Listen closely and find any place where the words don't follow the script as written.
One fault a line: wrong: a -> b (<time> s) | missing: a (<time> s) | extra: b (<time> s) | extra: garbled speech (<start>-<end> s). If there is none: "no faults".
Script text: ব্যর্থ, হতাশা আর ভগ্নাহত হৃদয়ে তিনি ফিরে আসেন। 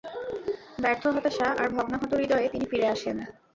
no faults